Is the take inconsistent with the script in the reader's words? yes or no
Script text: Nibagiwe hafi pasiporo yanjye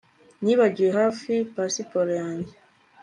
no